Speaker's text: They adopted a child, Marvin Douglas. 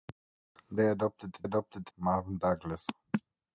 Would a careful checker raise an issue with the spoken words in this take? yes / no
yes